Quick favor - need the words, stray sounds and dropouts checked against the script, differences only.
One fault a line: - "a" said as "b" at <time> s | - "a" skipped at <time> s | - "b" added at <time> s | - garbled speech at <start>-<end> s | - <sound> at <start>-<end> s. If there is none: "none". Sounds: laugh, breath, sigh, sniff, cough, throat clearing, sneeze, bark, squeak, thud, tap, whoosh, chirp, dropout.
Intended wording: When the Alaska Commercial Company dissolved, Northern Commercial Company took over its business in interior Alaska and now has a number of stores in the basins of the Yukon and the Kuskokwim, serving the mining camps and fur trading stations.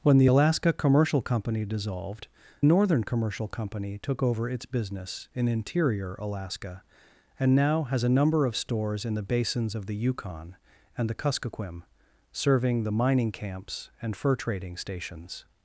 none